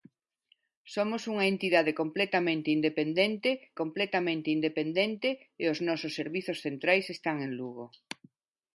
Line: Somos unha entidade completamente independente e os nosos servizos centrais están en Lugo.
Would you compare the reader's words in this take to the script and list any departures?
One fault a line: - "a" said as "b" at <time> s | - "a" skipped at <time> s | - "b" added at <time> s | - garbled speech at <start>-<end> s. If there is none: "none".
- "completamente independente" added at 3.8 s